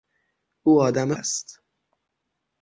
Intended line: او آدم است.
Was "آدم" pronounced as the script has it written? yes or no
yes